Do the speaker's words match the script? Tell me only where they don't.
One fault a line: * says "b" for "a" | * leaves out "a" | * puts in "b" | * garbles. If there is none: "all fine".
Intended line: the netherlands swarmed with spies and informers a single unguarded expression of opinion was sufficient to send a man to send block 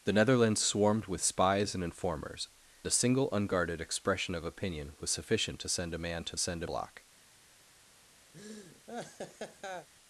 all fine